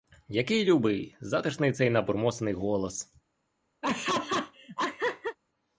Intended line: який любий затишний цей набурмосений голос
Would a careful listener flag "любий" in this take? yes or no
no